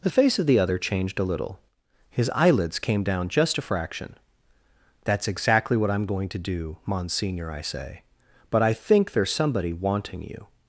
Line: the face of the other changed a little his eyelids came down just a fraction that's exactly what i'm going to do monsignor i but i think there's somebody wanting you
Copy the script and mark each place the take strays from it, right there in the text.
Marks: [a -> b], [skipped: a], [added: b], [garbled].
the face of the other changed a little his eyelids came down just a fraction that's exactly what i'm going to do monsignor i [added: say] but i think there's somebody wanting you